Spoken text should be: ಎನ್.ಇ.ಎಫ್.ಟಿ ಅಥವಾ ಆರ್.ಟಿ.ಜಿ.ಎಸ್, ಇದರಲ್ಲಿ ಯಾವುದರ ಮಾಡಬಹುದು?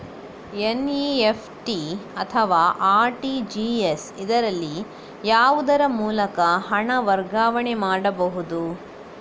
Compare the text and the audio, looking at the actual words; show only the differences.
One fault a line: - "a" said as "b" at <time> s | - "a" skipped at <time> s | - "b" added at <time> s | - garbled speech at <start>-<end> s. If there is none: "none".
- "ಮೂಲಕ ಹಣ ವರ್ಗಾವಣೆ" added at 6.0 s